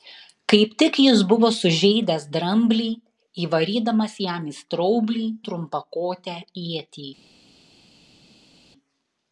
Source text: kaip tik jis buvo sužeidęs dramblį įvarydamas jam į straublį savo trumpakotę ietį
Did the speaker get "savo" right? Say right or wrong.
wrong